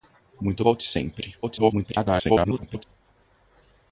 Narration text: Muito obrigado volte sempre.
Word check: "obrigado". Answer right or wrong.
wrong